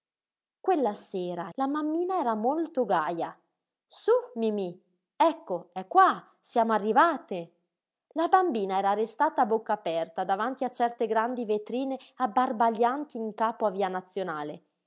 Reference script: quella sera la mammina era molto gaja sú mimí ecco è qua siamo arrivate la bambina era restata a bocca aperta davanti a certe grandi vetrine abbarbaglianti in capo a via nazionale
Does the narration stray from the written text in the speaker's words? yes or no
no